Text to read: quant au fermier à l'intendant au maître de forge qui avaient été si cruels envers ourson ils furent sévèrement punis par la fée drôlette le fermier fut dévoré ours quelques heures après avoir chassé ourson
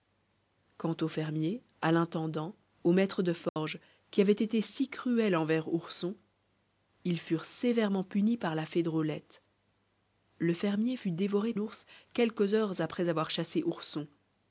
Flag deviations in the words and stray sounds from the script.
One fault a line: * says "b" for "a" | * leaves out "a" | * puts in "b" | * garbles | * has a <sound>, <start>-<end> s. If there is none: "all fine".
* has a dropout, 3.5-3.6 s